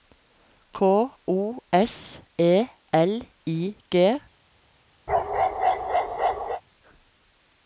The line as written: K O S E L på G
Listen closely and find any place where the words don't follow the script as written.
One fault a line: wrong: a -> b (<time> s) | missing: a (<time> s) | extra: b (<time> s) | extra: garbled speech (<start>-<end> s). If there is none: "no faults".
wrong: på -> I (3.4 s)